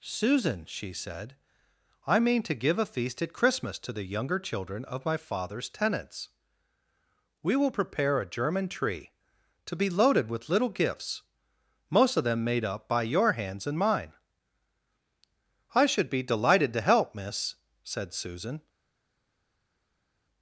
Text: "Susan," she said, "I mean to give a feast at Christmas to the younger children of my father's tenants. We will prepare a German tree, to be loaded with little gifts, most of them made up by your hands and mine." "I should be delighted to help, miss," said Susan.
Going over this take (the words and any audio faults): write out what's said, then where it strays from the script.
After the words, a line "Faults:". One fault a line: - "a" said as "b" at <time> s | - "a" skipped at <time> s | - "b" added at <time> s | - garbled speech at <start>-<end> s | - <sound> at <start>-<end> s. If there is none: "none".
"Susan," she said, "I mean to give a feast at Christmas to the younger children of my father's tenants. We will prepare a German tree, to be loaded with little gifts, most of them made up by your hands and mine." "I should be delighted to help, miss," said Susan.
Faults:
none